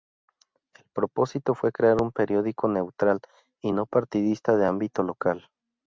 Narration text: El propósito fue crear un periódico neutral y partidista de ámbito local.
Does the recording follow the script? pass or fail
fail